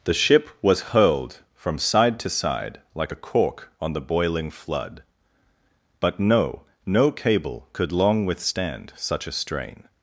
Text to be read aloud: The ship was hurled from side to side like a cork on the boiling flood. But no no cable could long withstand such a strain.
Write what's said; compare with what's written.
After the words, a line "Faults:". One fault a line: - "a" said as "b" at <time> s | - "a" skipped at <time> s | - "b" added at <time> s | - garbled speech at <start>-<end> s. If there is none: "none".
The ship was hurled from side to side like a cork on the boiling flood. But no no cable could long withstand such a strain.
Faults:
none